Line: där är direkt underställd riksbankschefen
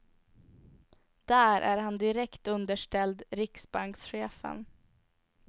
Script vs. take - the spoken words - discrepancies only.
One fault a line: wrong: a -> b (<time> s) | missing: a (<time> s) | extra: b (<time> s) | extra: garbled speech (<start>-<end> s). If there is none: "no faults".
extra: han (1.8 s)